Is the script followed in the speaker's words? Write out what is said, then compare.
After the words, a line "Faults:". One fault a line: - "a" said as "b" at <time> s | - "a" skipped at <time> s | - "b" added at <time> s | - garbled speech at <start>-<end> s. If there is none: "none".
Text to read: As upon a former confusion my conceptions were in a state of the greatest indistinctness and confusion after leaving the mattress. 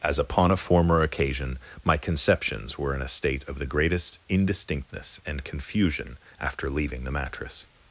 As upon a former occasion my conceptions were in a state of the greatest indistinctness and confusion after leaving the mattress.
Faults:
- "confusion" said as "occasion" at 1.0 s